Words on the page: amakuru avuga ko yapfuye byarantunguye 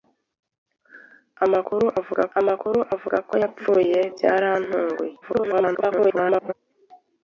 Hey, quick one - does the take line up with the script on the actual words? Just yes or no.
no